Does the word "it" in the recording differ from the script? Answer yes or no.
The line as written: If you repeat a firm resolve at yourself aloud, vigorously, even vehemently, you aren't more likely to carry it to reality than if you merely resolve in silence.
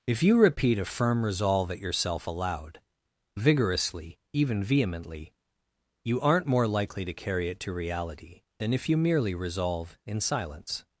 no